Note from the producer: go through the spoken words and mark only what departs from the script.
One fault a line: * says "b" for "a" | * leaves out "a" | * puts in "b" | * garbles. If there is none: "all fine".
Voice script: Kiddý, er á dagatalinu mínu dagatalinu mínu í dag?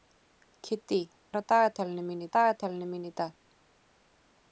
all fine